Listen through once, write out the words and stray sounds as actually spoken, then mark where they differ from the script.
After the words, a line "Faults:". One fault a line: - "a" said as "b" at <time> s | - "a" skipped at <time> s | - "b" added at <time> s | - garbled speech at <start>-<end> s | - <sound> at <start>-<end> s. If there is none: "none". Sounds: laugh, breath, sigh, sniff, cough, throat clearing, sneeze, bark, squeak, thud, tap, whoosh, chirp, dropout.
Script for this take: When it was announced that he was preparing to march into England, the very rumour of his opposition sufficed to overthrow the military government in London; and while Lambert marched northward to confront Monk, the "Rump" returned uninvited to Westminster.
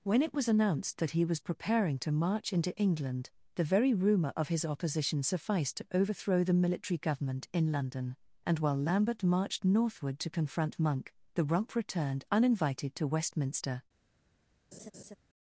When it was announced that he was preparing to march into England, the very rumour of his opposition sufficed to overthrow the military government in London; and while Lambert marched northward to confront Monk, the "Rump" returned uninvited to Westminster.
Faults:
- laugh at 14.7-15.2 s